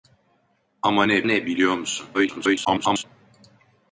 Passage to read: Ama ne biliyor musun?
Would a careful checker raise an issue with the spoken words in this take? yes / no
yes